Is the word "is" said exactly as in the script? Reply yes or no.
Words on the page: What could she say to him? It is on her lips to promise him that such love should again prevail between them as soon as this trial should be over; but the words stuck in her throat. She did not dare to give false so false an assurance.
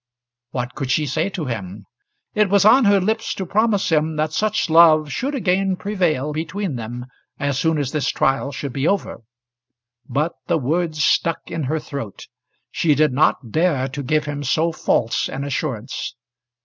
no